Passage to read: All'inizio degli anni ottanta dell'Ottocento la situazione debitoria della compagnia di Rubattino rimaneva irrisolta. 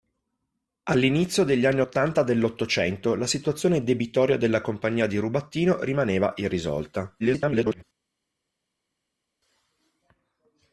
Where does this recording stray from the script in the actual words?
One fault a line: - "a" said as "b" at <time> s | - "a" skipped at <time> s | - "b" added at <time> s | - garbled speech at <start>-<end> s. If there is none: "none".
- garbled speech at 7.2-7.8 s